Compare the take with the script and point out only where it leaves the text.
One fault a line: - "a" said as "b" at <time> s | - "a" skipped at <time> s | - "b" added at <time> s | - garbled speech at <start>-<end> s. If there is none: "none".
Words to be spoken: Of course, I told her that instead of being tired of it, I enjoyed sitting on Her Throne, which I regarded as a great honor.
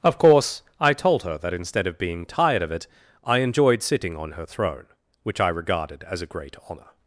none